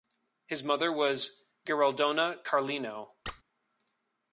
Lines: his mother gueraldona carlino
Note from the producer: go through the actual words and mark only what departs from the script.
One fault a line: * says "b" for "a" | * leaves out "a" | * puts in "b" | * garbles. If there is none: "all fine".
* puts in "was"